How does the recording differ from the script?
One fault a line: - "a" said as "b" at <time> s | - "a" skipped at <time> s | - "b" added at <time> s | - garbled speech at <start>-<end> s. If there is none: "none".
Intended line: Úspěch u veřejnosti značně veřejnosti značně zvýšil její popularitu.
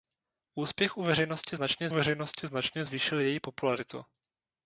none